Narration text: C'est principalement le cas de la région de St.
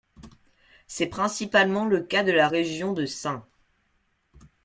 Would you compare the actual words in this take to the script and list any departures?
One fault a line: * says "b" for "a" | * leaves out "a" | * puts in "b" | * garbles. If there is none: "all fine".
all fine